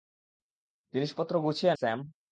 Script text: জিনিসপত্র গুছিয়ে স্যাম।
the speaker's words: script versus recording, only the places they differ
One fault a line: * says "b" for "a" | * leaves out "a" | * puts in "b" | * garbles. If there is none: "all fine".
all fine